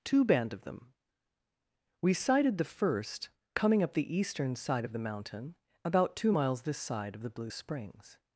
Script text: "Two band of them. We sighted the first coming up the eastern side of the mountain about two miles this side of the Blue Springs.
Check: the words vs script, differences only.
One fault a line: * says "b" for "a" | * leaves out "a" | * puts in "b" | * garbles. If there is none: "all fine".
all fine